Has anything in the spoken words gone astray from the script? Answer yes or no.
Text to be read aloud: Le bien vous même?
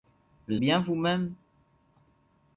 no